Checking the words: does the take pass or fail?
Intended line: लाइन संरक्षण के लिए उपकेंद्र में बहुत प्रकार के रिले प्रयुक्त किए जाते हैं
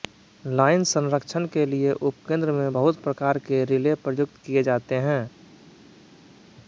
pass